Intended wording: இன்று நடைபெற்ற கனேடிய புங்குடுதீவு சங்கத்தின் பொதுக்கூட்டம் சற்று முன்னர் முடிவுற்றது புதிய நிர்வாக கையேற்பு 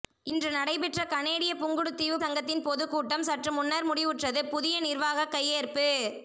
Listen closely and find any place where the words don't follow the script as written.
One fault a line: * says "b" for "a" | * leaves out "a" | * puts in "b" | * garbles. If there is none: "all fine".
all fine